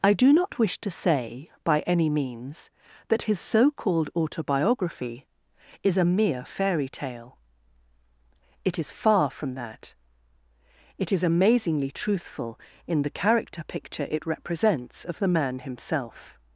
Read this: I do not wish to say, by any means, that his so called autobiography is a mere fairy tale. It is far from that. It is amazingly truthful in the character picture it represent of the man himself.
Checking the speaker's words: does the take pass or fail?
fail